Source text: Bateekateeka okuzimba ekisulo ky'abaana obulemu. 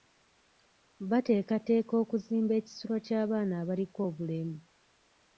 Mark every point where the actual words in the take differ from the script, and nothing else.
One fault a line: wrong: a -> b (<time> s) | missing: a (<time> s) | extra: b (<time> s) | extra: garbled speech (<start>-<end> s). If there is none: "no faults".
extra: abaliko (3.6 s)